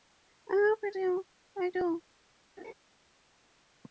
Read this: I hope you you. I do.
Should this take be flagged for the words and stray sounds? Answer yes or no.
yes